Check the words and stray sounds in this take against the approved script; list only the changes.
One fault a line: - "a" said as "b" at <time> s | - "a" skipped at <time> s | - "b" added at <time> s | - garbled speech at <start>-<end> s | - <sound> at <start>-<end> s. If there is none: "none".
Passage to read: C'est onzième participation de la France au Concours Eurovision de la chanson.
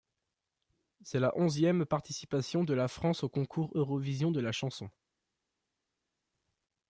- "la" added at 1.2 s